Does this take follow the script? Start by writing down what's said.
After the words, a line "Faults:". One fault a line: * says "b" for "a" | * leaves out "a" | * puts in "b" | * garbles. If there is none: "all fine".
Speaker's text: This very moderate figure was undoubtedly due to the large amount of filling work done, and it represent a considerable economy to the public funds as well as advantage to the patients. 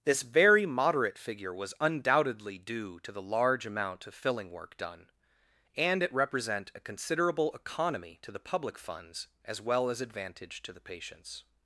This very moderate figure was undoubtedly due to the large amount of filling work done, and it represent a considerable economy to the public funds as well as advantage to the patients.
Faults:
all fine